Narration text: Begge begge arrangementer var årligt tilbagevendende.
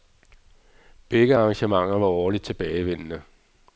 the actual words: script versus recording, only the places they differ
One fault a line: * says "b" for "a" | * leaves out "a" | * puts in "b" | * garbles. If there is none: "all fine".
* leaves out "begge"